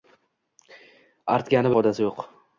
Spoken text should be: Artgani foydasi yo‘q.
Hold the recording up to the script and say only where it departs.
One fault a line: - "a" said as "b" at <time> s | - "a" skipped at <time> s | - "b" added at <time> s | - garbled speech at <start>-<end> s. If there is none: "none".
none